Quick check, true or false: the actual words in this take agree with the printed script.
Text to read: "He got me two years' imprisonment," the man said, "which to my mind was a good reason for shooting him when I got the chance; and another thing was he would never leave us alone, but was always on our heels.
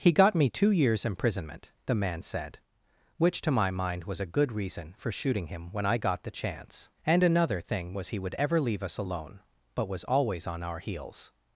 false